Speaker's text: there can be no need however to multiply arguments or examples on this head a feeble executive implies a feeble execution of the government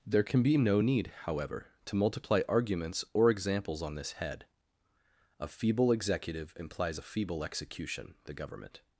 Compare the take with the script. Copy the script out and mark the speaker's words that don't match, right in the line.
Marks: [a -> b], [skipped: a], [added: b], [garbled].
there can be no need however to multiply arguments or examples on this head a feeble executive implies a feeble execution [skipped: of] the government